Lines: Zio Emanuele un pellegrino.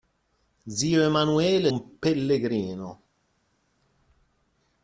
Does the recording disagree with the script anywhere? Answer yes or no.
no